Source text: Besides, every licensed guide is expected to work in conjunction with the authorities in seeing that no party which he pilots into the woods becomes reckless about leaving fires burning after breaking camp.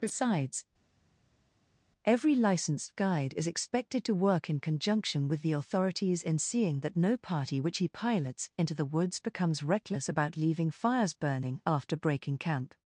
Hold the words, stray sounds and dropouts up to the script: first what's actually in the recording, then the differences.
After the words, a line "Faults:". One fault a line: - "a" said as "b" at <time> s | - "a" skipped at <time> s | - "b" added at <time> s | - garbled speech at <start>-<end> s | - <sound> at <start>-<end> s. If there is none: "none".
Besides, every licensed guide is expected to work in conjunction with the authorities in seeing that no party which he pilots into the woods becomes reckless about leaving fires burning after breaking camp.
Faults:
none